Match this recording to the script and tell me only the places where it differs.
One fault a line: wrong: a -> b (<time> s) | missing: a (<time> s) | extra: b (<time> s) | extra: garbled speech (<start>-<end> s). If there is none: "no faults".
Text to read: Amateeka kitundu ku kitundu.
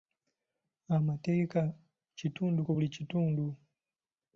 extra: buli (2.7 s)